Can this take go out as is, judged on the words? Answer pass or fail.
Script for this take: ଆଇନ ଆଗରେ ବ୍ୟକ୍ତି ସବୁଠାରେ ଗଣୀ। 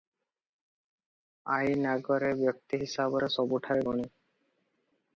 fail